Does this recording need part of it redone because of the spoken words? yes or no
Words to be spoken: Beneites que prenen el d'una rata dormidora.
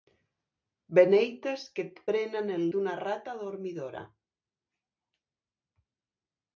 no